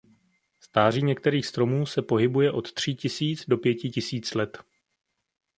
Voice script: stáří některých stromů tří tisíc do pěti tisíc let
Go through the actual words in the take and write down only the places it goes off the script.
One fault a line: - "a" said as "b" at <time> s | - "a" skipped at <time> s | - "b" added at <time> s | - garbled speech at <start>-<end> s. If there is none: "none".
- "se pohybuje od" added at 1.9 s